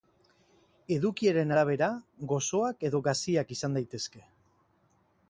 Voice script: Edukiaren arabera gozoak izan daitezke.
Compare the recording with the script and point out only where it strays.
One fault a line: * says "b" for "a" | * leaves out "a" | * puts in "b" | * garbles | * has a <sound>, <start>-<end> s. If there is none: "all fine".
* puts in "edo gaziak"